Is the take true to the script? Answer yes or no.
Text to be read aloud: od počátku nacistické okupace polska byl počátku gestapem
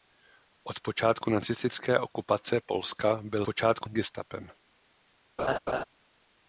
yes